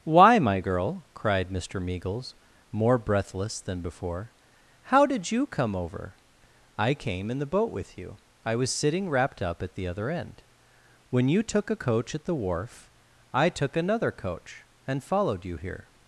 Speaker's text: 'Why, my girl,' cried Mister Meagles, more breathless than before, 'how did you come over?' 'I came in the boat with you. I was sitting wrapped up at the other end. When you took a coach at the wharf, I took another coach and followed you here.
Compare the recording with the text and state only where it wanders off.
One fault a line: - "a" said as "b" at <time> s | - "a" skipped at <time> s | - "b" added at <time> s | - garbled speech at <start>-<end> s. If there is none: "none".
none